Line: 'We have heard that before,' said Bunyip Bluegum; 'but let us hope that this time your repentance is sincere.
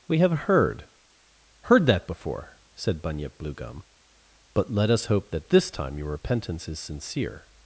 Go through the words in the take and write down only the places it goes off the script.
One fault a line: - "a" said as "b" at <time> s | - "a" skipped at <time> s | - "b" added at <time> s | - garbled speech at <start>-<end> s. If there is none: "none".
- "heard" added at 1.6 s